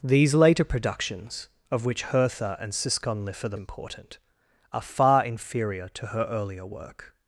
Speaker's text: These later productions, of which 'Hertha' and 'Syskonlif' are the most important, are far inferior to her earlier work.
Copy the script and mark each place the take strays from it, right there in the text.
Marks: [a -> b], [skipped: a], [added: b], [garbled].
These later productions, of which 'Hertha' and 'Syskonlif' are the [skipped: most] important, are far inferior to her earlier work.